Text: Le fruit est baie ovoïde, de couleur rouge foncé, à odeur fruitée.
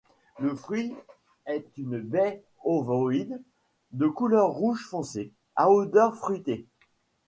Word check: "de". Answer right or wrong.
right